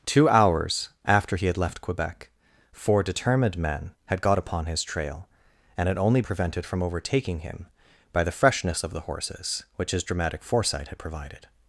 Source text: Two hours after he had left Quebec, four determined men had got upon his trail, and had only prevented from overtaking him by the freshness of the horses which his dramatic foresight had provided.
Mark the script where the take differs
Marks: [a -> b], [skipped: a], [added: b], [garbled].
Two hours after he had left Quebec, four determined men had got upon his trail, and had only prevented from overtaking him by the freshness of the horses which his dramatic foresight had provided.